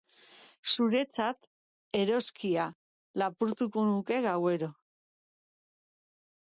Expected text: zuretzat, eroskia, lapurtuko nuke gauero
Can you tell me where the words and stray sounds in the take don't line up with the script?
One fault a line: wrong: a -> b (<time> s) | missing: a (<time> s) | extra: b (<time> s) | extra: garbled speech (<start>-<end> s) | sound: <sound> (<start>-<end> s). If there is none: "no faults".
no faults